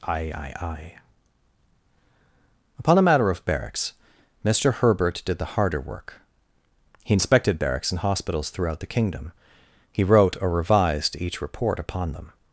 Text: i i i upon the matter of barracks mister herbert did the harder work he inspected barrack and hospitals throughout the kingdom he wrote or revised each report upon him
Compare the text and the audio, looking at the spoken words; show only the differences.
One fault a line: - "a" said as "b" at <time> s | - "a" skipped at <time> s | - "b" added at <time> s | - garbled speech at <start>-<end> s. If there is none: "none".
- "barrack" said as "barracks" at 7.6 s
- "him" said as "them" at 12.1 s